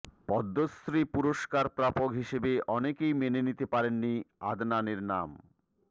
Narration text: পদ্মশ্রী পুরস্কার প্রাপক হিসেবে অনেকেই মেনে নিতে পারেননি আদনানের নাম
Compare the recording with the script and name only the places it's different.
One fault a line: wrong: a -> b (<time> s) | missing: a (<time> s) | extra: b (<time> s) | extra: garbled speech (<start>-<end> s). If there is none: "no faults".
no faults